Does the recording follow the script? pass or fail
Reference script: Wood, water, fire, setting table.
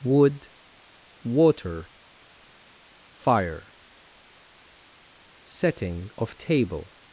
fail